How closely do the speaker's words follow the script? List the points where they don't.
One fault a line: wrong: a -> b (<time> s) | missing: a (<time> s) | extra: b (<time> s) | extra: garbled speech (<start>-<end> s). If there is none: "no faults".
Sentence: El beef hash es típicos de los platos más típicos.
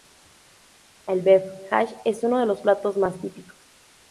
wrong: típicos -> uno (2.2 s)